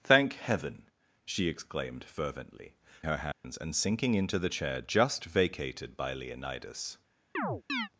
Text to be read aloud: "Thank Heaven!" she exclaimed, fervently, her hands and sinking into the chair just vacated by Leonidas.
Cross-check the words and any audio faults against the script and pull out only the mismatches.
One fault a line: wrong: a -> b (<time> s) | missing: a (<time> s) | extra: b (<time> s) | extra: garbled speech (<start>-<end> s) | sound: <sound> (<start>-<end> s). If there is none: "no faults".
sound: dropout (3.3-3.4 s)
sound: chirp (7.3-7.9 s)